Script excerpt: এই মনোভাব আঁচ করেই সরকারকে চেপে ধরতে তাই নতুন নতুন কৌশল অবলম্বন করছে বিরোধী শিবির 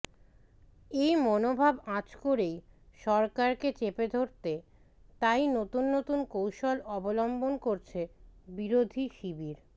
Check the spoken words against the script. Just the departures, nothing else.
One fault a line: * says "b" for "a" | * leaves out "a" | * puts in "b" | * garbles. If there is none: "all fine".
all fine